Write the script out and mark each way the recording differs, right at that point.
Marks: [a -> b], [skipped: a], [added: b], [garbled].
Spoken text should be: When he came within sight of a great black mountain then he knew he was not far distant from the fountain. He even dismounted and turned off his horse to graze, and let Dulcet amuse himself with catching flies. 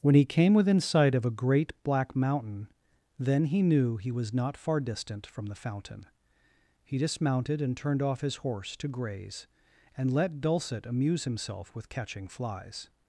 When he came within sight of a great black mountain then he knew he was not far distant from the fountain. He [skipped: even] dismounted and turned off his horse to graze, and let Dulcet amuse himself with catching flies.